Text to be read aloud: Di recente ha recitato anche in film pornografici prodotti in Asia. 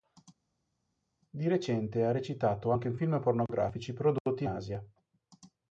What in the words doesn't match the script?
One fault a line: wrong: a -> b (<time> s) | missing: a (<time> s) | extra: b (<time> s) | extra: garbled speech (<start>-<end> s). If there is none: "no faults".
no faults